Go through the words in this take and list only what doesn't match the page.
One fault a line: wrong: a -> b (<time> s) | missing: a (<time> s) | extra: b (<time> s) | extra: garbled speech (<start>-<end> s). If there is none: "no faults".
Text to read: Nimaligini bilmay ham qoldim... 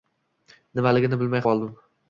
missing: ham (1.5 s)